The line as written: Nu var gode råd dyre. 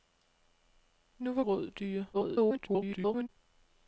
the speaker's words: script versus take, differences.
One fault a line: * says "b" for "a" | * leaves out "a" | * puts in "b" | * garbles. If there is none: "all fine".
* leaves out "gode"
* garbles